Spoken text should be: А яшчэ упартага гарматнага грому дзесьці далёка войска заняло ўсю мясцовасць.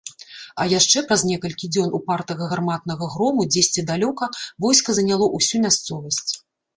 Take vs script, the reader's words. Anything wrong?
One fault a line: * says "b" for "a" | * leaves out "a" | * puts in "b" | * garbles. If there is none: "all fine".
* puts in "праз некалькі дзён"